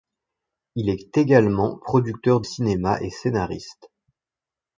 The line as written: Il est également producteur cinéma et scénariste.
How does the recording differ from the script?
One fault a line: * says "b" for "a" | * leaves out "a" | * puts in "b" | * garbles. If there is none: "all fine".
all fine